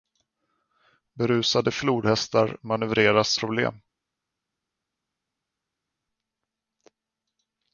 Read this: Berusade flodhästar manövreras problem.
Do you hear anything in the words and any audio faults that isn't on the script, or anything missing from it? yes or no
no